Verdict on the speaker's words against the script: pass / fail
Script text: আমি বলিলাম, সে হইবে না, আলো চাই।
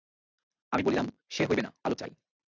pass